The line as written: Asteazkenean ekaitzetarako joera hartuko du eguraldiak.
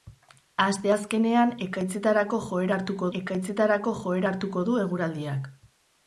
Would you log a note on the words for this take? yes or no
yes